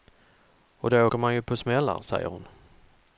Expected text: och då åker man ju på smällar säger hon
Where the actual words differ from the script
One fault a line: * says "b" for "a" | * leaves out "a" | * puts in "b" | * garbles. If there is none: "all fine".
all fine